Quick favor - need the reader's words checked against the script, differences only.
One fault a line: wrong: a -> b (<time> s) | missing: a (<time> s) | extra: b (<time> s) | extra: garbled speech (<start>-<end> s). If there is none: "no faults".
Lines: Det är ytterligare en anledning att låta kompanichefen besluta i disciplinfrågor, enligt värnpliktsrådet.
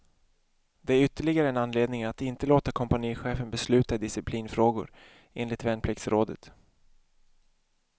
extra: inte (2.2 s)